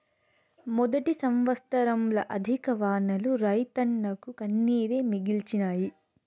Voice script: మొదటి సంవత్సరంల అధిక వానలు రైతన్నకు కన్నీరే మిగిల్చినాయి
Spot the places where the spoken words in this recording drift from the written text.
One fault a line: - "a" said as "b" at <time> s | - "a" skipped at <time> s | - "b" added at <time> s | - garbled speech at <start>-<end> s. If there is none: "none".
none